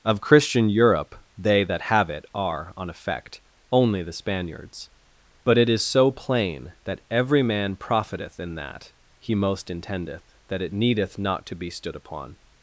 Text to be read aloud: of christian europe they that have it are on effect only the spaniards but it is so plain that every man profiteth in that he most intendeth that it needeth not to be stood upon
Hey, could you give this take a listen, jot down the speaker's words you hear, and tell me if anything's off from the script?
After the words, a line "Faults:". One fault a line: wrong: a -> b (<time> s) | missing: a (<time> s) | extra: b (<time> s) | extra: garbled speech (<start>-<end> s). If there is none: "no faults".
of christian europe they that have it are on effect only the spaniards but it is so plain that every man profiteth in that he most intendeth that it needeth not to be stood upon
Faults:
no faults